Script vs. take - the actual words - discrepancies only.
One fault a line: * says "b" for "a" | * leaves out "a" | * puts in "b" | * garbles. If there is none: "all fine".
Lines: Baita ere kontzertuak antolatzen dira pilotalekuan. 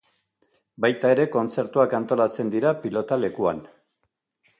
all fine